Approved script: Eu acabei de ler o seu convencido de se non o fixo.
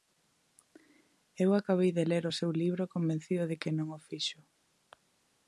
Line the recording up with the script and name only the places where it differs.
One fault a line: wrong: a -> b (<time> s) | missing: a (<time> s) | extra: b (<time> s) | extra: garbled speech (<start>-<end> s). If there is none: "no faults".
extra: libro (2.6 s)
wrong: se -> que (3.6 s)